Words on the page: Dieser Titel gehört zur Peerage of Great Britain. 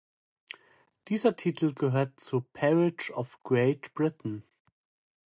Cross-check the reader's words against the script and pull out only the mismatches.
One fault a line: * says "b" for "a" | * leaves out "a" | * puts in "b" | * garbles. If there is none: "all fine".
all fine